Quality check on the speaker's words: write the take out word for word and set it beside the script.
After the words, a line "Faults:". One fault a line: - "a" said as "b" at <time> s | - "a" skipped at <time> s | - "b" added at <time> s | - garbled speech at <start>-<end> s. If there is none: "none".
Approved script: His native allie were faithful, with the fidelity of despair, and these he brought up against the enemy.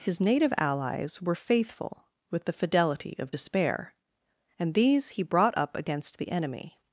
His native allies were faithful, with the fidelity of despair, and these he brought up against the enemy.
Faults:
- "allie" said as "allies" at 0.6 s